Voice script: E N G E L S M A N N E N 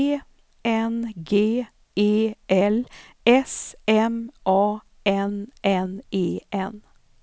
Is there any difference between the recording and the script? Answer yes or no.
no